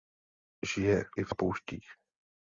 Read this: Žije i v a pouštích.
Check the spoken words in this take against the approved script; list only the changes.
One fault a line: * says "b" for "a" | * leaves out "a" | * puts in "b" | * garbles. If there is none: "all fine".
all fine